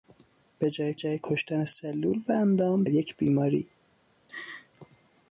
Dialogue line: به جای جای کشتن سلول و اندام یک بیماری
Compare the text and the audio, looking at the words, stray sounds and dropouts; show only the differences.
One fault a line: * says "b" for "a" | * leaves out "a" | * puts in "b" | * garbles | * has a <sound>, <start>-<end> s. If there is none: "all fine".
* has a laugh, 4.3-4.7 s